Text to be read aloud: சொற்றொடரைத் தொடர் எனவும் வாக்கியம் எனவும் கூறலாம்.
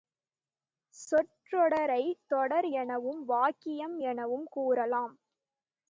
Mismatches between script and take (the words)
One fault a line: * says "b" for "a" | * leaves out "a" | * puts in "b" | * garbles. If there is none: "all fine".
all fine